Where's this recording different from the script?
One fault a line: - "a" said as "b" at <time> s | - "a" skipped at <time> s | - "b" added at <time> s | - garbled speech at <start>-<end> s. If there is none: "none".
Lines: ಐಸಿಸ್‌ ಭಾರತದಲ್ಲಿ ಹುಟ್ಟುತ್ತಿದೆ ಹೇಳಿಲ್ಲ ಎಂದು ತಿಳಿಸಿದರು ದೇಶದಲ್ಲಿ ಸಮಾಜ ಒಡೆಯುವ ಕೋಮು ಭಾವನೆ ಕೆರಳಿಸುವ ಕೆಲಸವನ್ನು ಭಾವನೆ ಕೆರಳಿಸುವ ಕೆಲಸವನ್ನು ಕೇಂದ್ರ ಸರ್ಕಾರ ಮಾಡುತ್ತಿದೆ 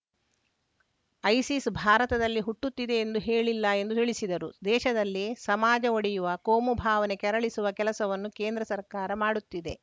- "ಎಂದು" added at 3.0 s
- "ಭಾವನೆ ಕೆರಳಿಸುವ ಕೆಲಸವನ್ನು" skipped at 8.3 s